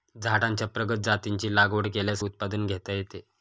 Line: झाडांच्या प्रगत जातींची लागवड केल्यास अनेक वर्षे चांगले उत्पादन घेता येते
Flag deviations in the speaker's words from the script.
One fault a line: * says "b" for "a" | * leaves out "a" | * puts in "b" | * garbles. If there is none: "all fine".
* leaves out "अनेक वर्षे चांगले"